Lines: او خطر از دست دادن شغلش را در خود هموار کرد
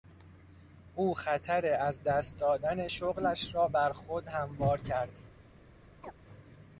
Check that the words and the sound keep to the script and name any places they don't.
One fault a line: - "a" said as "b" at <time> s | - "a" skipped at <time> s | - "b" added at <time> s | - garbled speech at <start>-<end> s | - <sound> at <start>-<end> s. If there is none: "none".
- "در" said as "بر" at 3.7 s
- chirp at 6.0-6.1 s